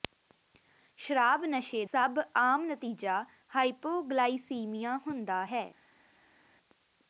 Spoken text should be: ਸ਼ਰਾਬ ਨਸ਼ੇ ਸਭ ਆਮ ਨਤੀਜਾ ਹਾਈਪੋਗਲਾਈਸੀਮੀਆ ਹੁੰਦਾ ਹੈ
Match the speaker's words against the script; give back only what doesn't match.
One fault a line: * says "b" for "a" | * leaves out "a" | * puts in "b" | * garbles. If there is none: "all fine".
all fine